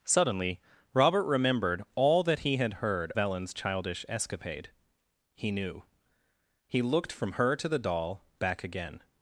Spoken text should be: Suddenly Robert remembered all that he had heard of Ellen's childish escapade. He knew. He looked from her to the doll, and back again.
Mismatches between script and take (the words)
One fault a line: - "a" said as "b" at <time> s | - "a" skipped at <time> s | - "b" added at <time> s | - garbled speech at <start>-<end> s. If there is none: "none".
- "of" skipped at 3.1 s
- "and" skipped at 8.2 s